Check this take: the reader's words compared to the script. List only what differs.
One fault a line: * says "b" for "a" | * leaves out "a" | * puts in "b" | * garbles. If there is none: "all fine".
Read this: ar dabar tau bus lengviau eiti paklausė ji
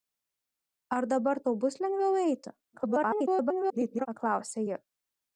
* garbles